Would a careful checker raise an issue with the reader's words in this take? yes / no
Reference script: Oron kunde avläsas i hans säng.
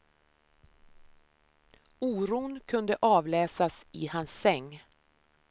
no